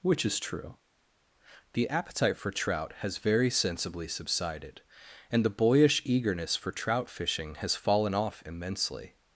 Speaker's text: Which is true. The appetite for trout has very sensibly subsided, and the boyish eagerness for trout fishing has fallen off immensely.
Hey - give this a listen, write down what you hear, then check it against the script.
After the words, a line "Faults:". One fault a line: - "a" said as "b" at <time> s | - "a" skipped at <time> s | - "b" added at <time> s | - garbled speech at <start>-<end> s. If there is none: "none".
Which is true. The appetite for trout has very sensibly subsided, and the boyish eagerness for trout fishing has fallen off immensely.
Faults:
none